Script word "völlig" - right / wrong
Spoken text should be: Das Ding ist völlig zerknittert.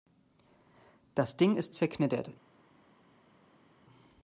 wrong